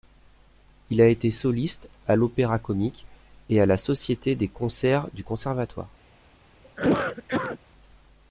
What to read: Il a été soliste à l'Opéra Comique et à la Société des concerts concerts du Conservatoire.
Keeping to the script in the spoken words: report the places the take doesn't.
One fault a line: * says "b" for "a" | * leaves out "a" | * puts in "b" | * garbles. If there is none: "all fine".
* leaves out "concerts"